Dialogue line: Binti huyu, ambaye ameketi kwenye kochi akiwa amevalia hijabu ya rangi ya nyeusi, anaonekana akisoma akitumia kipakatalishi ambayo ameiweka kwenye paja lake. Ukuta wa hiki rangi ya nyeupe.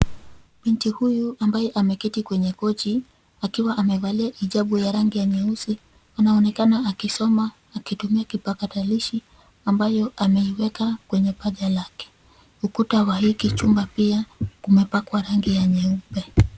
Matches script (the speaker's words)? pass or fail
fail